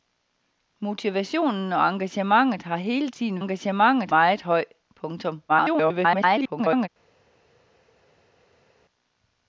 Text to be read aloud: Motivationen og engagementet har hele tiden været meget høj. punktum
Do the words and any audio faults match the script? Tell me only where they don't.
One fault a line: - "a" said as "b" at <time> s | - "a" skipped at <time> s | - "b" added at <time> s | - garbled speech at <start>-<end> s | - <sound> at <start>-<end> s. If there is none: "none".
- "været" said as "engagementet" at 3.4 s
- garbled speech at 5.5-6.9 s